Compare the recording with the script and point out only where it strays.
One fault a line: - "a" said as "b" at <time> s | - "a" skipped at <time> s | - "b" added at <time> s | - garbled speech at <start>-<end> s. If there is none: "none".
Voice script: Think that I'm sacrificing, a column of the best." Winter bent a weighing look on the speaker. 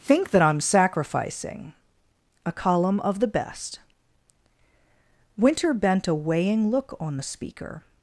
none